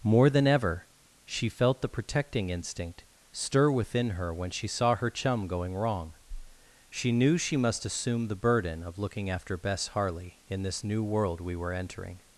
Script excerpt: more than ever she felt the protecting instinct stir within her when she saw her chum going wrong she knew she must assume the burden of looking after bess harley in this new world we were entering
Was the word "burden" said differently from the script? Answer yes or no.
no